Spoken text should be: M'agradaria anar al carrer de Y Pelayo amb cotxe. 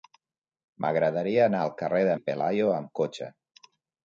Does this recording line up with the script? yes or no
yes